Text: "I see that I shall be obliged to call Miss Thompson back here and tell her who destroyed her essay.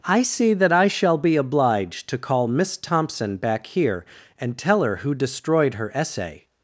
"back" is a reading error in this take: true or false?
false